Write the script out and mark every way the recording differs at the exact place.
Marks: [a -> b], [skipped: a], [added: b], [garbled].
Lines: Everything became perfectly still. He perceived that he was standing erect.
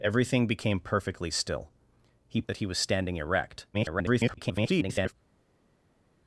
Everything became perfectly still. He [skipped: perceived] that he was standing erect. [garbled]